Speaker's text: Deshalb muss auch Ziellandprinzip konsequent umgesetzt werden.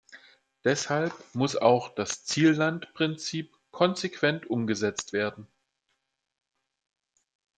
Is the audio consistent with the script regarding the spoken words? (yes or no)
no